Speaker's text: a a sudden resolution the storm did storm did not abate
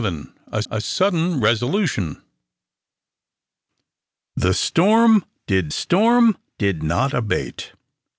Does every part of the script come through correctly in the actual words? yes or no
yes